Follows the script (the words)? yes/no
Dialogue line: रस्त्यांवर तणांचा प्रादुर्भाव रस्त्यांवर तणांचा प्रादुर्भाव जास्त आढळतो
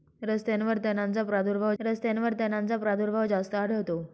yes